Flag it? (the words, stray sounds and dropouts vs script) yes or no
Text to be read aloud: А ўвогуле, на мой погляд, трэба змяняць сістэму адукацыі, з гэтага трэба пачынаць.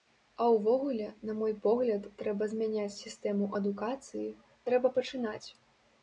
yes